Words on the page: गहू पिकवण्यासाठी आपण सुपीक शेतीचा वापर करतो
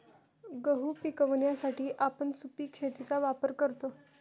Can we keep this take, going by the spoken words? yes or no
yes